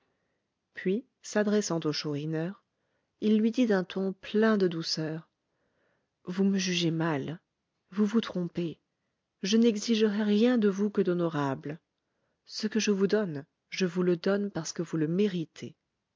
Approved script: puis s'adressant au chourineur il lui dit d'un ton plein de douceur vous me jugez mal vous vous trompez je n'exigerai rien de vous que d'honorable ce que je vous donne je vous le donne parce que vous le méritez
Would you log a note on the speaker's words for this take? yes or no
no